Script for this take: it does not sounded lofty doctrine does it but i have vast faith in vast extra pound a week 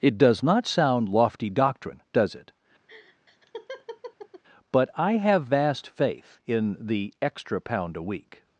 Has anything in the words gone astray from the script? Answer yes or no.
yes